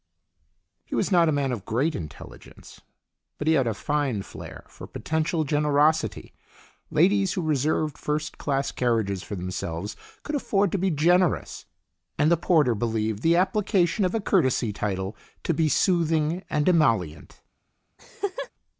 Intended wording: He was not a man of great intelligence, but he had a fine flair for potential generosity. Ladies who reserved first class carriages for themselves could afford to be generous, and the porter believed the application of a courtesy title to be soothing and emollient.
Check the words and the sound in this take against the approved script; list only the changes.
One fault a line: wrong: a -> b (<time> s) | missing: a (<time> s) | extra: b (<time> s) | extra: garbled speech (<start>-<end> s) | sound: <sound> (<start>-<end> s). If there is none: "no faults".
sound: laugh (18.0-18.5 s)